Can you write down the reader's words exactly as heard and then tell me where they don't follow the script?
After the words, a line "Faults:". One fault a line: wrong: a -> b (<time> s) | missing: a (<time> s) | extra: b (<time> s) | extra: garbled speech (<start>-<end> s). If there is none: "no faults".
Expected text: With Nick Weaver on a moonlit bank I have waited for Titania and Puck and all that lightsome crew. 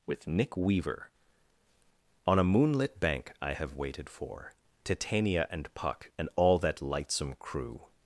With Nick Weaver on a moonlit bank I have waited for Titania and Puck and all that lightsome crew.
Faults:
no faults